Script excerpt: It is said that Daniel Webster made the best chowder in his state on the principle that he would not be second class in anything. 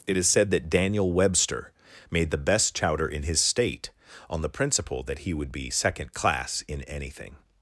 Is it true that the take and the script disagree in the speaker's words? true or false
true